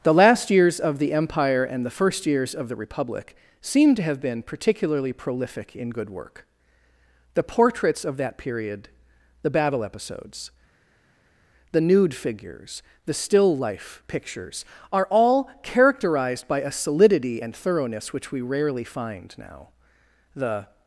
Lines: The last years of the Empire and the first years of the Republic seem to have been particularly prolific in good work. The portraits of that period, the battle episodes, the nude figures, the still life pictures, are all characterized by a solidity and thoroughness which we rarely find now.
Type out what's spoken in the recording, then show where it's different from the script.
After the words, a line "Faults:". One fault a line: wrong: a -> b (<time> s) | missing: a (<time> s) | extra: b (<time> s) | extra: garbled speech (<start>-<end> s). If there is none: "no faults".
The last years of the Empire and the first years of the Republic seem to have been particularly prolific in good work. The portraits of that period, the battle episodes, the nude figures, the still life pictures, are all characterized by a solidity and thoroughness which we rarely find now. The
Faults:
extra: The (20.4 s)